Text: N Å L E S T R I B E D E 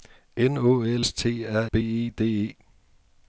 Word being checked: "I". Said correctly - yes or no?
no